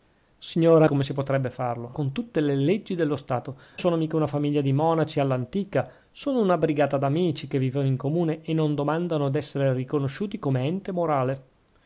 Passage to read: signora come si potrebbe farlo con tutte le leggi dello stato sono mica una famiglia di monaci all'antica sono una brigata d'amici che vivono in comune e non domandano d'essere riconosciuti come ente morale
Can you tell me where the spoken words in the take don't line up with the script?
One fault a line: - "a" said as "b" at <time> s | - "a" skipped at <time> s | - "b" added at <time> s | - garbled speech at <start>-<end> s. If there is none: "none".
none